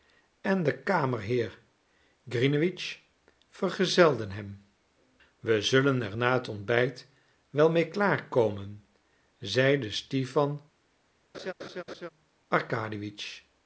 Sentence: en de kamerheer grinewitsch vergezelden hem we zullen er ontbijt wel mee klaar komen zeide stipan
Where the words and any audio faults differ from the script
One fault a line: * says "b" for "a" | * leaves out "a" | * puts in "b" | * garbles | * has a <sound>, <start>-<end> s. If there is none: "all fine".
* puts in "na het"
* has a laugh, 11.3-12.1 s